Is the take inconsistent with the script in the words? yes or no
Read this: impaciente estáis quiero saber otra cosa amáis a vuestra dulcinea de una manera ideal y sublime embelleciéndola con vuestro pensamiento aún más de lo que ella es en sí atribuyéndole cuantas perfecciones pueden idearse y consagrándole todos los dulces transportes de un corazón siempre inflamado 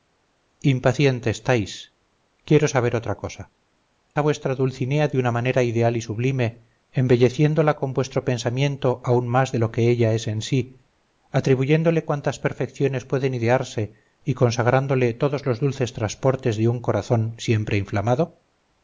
yes